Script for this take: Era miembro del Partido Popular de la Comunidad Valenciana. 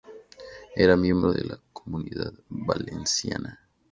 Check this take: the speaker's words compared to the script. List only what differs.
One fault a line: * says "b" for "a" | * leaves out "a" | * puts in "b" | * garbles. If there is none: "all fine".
* leaves out "del Partido Popular"